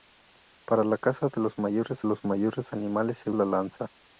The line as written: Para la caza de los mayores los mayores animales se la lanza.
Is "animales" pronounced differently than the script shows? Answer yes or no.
no